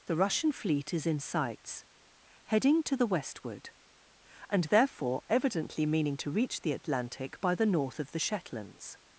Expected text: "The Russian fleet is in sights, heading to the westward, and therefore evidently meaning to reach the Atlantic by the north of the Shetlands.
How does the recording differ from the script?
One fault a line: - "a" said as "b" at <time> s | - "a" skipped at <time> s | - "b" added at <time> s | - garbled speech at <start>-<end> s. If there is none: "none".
none